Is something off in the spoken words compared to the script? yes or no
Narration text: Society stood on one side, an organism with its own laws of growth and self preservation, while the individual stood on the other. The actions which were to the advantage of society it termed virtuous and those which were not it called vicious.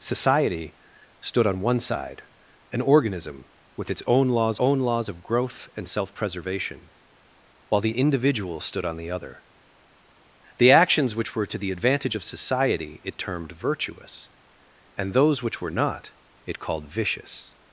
yes